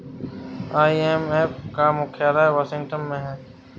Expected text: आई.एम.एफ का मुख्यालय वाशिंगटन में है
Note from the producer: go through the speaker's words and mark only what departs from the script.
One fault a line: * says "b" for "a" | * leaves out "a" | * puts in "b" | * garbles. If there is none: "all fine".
all fine